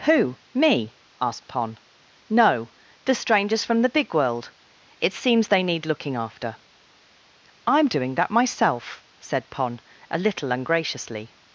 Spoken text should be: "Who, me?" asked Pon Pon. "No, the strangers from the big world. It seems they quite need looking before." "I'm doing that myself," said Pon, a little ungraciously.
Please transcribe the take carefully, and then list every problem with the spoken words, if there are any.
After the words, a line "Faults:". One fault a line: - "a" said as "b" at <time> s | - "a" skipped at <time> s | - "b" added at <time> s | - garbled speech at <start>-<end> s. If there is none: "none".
"Who, me?" asked Pon. "No, the strangers from the big world. It seems they need looking after." "I'm doing that myself," said Pon, a little ungraciously.
Faults:
- "Pon" skipped at 1.8 s
- "quite" skipped at 5.6 s
- "before" said as "after" at 6.2 s